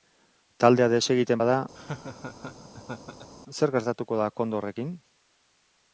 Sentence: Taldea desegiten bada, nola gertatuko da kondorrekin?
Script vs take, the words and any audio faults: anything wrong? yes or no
yes